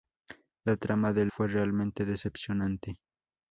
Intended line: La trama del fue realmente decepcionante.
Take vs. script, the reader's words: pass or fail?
pass